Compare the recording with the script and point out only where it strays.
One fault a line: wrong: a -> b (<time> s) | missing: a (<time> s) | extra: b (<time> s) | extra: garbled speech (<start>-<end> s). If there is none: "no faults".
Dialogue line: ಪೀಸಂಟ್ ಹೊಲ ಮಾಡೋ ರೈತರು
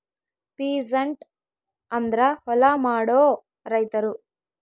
extra: ಅಂದ್ರ (1.9 s)